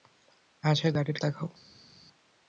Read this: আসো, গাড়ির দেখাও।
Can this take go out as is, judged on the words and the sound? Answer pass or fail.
pass